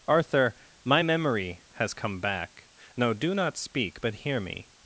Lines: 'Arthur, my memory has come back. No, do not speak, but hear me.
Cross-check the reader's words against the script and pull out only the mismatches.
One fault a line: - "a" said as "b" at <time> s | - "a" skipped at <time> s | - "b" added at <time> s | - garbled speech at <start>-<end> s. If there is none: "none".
none